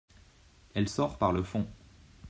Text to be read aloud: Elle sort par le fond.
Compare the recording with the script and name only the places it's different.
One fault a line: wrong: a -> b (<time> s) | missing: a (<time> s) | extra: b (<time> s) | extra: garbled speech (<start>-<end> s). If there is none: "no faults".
no faults